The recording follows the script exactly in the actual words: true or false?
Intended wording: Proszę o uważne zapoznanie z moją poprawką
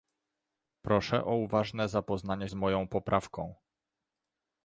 true